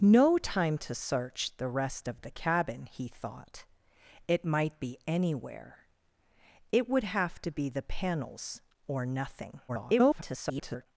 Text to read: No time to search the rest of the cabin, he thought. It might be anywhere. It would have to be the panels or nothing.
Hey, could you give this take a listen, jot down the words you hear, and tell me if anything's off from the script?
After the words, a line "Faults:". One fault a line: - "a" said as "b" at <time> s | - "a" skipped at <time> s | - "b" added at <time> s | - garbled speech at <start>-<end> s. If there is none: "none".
No time to search the rest of the cabin, he thought. It might be anywhere. It would have to be the panels or nothing. [garbled]
Faults:
- garbled speech at 9.7-10.9 s